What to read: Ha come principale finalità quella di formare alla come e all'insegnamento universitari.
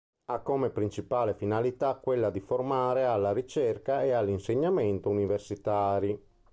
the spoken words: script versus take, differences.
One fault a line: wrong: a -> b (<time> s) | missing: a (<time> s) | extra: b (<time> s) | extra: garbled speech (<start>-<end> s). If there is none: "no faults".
wrong: come -> ricerca (3.3 s)